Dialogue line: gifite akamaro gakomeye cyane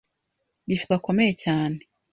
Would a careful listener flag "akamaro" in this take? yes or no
yes